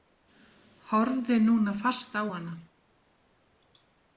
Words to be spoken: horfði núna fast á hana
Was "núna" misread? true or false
false